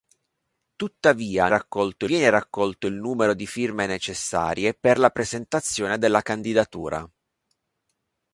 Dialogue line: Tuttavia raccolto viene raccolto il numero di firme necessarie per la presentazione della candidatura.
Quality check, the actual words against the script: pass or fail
pass